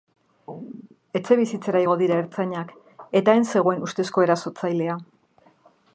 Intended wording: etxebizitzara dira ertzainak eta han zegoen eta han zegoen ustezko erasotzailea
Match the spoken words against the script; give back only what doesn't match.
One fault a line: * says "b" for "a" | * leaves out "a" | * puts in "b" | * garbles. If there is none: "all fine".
* puts in "igo"
* leaves out "eta han zegoen"